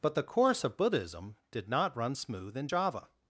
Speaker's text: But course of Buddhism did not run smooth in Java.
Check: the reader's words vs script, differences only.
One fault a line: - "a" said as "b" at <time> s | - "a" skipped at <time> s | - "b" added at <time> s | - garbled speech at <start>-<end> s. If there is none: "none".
- "the" added at 0.1 s